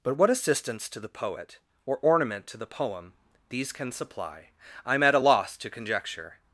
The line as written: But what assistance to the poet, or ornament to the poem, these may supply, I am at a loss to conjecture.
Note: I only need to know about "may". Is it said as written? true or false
false